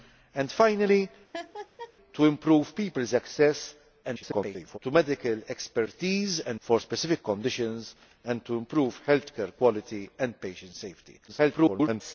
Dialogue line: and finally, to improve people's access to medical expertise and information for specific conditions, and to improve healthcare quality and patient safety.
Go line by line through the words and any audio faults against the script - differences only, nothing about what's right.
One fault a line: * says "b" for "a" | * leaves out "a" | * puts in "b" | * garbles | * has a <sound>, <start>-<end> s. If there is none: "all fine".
* has a laugh, 1.3-1.9 s
* garbles
* leaves out "information"
* garbles